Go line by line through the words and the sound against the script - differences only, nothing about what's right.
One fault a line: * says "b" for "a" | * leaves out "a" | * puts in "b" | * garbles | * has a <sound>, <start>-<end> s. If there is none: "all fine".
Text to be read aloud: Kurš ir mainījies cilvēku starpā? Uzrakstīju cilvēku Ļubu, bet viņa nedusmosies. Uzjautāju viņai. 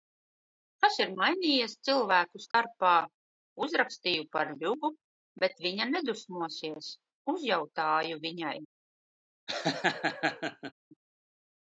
* says "Kas" for "Kurš"
* has a dropout, 2.5-2.5 s
* says "par" for "cilvēku"
* has a laugh, 9.5-10.7 s